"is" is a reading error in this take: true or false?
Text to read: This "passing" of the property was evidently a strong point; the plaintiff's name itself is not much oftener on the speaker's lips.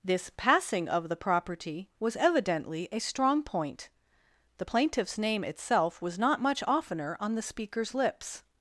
true